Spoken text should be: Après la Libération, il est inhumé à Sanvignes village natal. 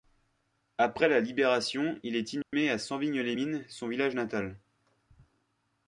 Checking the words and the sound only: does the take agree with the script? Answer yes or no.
no